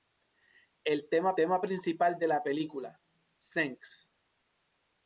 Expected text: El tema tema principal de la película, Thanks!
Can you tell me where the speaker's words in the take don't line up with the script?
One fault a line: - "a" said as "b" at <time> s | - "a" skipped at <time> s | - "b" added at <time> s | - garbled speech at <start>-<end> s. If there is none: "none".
none